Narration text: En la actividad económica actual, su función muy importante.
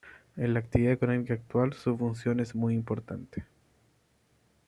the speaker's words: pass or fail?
fail